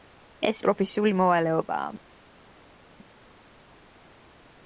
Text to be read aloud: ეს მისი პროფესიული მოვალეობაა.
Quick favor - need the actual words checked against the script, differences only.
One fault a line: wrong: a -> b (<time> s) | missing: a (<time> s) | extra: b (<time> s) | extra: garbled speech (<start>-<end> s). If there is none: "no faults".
missing: მისი (0.6 s)